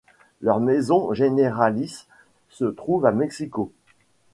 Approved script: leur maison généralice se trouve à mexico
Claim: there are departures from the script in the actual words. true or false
false